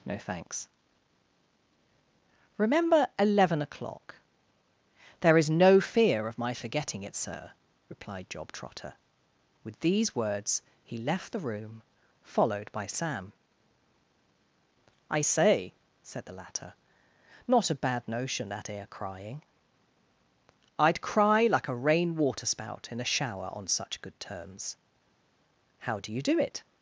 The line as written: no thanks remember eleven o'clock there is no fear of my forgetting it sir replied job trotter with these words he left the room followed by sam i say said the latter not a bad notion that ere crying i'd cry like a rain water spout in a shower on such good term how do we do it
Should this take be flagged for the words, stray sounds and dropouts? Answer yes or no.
yes